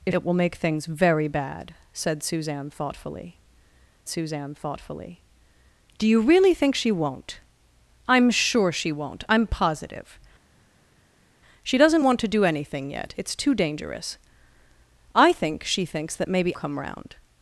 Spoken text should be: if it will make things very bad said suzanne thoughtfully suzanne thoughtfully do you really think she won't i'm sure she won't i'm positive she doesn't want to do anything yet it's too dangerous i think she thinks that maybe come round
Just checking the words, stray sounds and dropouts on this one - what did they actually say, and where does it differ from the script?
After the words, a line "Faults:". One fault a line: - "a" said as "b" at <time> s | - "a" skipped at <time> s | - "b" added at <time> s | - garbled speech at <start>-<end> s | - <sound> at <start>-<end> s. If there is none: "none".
if it will make things very bad said suzanne thoughtfully suzanne thoughtfully do you really think she won't i'm sure she won't i'm positive she doesn't want to do anything yet it's too dangerous i think she thinks that maybe come round
Faults:
none